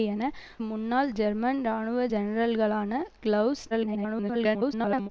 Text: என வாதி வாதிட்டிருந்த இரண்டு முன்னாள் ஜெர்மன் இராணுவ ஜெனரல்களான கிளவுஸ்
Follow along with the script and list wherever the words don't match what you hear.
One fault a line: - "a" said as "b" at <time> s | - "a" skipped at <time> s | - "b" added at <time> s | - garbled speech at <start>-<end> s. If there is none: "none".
- "வாதி வாதிட்டிருந்த இரண்டு" skipped at 0.2 s
- garbled speech at 3.7-5.1 s